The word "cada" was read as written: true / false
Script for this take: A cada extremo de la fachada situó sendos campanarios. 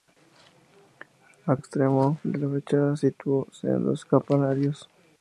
false